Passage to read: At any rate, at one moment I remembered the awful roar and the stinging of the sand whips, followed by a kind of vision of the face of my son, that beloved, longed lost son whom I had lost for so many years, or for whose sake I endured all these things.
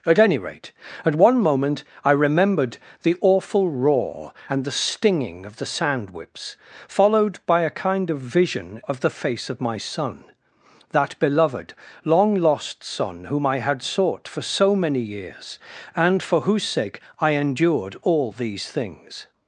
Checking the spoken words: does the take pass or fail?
fail